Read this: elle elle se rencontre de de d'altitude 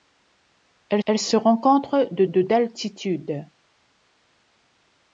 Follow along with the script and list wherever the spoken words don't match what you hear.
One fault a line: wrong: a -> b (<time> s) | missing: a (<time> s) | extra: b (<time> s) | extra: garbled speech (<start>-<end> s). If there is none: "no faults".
no faults